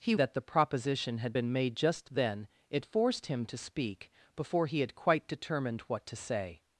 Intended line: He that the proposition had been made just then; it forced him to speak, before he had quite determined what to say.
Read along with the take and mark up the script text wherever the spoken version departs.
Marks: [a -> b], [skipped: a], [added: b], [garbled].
He that the proposition had been made just then; it forced him to speak, before he had quite determined what to say.